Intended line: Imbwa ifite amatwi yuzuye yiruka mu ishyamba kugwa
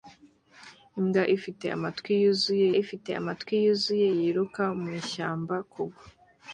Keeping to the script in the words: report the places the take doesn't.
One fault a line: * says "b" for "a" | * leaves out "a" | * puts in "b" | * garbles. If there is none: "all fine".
* puts in "ifite amatwi yuzuye"